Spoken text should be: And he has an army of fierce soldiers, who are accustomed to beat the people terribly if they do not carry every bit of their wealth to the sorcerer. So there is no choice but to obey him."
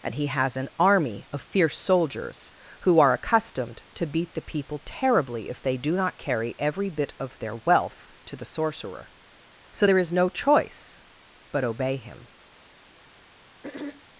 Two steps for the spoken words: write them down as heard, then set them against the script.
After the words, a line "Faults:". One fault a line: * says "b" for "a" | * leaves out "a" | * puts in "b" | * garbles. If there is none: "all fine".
And he has an army of fierce soldiers, who are accustomed to beat the people terribly if they do not carry every bit of their wealth to the sorcerer. So there is no choice but obey him."
Faults:
* leaves out "to"